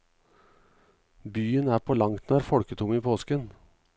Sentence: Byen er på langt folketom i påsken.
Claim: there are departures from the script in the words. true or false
true